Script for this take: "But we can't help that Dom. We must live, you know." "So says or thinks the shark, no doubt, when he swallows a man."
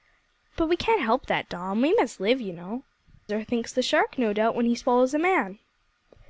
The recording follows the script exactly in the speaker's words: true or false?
false